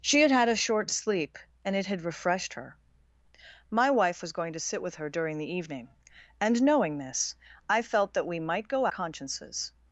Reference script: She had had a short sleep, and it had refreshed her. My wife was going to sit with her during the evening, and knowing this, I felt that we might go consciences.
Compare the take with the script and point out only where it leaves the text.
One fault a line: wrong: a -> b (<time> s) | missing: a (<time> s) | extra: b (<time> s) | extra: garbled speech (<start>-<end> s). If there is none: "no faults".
no faults